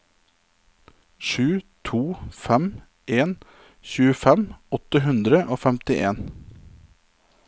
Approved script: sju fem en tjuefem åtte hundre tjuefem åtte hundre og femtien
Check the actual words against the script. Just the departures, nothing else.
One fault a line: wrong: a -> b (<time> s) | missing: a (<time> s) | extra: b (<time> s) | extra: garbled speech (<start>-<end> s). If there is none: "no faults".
extra: to (1.9 s)
missing: tjuefem åtte hundre (5.4 s)